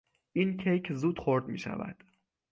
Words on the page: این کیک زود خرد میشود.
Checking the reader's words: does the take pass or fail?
pass